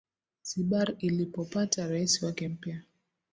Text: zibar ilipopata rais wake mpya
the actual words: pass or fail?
pass